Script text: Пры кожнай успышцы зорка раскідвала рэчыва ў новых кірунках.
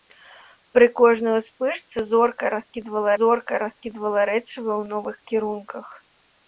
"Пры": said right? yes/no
yes